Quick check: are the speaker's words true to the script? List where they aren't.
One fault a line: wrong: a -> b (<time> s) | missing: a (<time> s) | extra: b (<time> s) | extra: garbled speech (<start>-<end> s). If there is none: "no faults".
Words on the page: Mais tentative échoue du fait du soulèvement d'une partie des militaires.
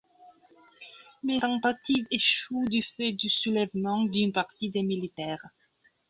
no faults